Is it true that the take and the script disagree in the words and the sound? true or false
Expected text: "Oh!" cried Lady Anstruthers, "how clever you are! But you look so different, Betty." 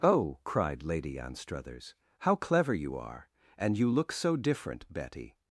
true